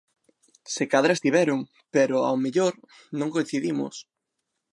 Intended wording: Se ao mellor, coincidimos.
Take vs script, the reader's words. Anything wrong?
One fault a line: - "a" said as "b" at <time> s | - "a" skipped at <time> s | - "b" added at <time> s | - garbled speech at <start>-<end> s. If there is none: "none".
- "cadra estiveron pero" added at 0.9 s
- "non" added at 3.2 s